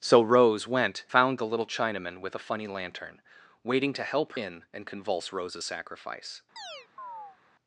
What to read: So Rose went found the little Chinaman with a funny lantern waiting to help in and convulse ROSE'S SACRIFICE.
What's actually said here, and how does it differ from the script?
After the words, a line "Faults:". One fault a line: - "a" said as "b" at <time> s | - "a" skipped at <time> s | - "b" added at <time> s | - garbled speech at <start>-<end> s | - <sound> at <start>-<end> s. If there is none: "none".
So Rose went found the little Chinaman with a funny lantern waiting to help in and convulse ROSE'S SACRIFICE.
Faults:
- chirp at 6.6-7.4 s